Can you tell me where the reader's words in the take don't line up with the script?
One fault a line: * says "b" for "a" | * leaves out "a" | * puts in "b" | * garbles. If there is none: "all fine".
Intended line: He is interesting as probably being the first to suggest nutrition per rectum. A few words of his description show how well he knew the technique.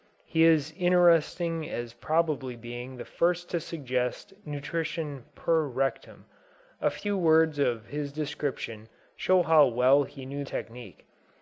* leaves out "the"